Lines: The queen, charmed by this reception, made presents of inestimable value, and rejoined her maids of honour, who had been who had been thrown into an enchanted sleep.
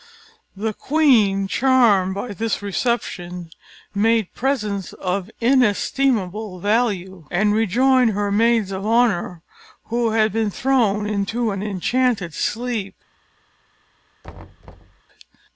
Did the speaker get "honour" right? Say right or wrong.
right